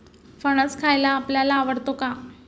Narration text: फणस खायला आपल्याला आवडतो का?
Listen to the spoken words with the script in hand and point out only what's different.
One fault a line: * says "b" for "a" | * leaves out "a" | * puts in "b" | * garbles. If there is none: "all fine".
all fine